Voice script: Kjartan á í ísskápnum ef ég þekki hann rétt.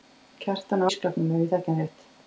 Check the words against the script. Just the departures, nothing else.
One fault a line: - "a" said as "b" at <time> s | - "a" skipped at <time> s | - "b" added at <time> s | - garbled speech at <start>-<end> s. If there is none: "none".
none